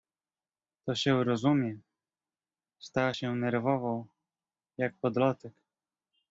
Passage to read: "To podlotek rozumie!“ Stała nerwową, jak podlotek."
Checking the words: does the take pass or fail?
fail